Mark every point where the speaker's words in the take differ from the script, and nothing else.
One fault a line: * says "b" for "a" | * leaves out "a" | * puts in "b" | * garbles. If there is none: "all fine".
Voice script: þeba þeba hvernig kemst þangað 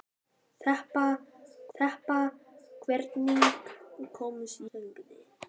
all fine